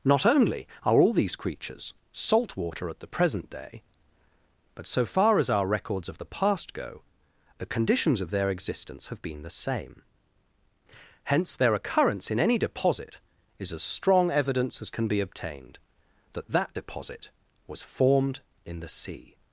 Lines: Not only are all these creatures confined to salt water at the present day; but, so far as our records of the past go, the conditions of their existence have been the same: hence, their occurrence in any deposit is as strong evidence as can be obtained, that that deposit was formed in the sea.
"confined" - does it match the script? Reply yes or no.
no